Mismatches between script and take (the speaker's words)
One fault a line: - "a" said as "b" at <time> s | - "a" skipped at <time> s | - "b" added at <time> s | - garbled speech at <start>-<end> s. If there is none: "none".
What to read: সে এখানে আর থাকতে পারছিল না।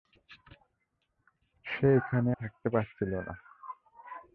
- "আর" skipped at 2.3 s